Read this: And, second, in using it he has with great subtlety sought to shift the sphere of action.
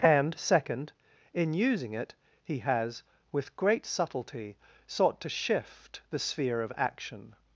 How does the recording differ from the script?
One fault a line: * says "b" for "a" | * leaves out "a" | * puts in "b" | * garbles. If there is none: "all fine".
all fine